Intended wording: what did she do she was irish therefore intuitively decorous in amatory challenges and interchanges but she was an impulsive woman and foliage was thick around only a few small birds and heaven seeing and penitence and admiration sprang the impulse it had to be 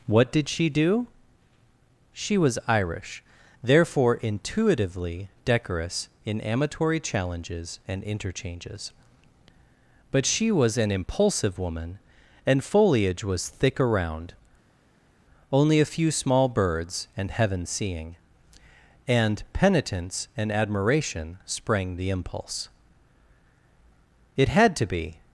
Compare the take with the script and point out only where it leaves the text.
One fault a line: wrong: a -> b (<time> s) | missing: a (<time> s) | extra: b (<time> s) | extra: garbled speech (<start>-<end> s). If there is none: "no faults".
no faults